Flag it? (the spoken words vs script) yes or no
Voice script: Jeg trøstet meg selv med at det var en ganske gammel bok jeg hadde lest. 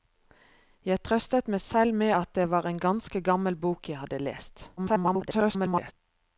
yes